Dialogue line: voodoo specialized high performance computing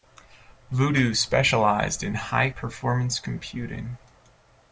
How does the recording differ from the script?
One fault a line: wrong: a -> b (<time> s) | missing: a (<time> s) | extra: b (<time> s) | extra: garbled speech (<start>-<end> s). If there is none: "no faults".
extra: in (2.0 s)